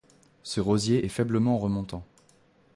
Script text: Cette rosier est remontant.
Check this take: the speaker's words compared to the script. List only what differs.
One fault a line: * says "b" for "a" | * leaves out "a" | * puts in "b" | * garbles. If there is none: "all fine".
* says "Ce" for "Cette"
* puts in "faiblement"